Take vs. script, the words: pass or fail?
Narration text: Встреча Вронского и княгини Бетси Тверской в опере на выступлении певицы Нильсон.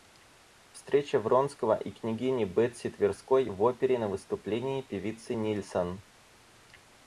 pass